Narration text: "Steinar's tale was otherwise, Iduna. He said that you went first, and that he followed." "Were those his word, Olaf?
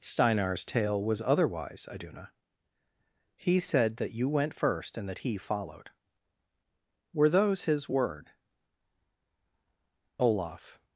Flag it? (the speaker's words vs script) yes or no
no